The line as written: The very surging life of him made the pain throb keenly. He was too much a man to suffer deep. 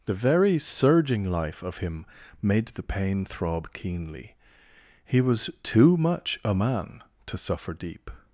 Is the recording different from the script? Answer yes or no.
no